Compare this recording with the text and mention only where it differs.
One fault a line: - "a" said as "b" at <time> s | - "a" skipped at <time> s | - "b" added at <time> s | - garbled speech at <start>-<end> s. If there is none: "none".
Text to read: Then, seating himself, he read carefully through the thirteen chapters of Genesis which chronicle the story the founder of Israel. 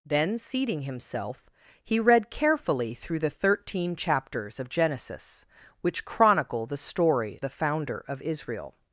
none